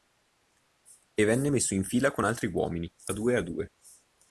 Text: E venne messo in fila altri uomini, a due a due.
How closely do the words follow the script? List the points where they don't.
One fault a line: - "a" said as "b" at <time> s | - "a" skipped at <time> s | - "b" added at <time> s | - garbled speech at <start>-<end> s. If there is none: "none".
- "con" added at 2.1 s